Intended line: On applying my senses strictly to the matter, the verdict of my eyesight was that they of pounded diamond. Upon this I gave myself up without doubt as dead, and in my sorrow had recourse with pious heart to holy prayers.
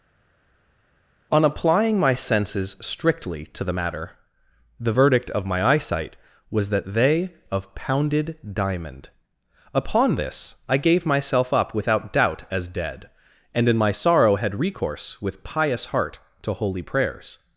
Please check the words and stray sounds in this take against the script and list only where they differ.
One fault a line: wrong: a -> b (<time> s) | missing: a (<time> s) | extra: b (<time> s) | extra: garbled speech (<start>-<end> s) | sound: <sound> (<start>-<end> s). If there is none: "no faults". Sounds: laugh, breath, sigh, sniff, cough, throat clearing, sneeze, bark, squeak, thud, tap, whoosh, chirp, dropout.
no faults